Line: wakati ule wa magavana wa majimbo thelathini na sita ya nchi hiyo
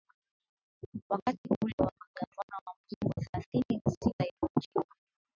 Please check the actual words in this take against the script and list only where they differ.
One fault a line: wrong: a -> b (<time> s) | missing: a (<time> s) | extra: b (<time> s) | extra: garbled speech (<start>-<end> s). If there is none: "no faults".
no faults